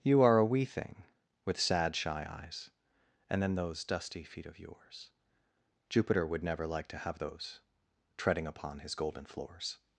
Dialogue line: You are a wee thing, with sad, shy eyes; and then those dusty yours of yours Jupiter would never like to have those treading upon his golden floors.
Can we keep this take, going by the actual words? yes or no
no